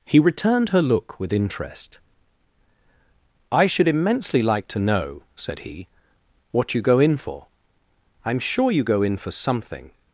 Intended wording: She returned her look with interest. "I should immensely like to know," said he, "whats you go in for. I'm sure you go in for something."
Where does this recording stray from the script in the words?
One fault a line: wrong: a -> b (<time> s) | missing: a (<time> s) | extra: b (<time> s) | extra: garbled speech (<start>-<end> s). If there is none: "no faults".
wrong: She -> He (0.1 s)
wrong: whats -> what (6.5 s)